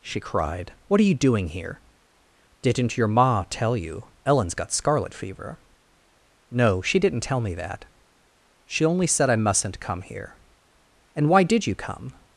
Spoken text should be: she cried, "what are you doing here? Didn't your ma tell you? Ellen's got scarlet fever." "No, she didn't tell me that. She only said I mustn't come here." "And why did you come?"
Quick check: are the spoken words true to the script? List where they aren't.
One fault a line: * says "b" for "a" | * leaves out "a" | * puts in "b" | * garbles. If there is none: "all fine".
all fine